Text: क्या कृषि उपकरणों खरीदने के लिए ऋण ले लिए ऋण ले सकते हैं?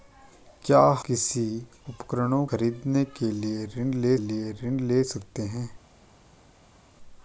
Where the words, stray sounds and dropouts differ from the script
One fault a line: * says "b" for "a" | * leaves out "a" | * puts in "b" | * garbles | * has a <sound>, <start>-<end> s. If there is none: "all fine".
all fine